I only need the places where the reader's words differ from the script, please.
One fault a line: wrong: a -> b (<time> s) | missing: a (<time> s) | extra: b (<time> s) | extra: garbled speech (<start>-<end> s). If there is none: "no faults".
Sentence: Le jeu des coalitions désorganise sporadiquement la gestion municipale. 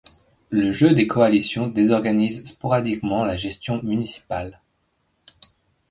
no faults